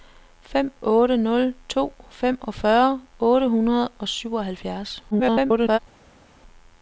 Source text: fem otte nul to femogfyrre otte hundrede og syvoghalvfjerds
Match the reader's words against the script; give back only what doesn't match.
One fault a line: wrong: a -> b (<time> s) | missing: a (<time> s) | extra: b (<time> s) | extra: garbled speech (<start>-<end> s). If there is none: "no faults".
extra: garbled speech (5.1-5.8 s)